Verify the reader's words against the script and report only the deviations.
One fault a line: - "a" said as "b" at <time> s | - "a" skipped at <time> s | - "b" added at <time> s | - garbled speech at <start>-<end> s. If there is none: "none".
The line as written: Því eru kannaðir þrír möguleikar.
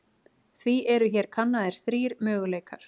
- "hér" added at 1.2 s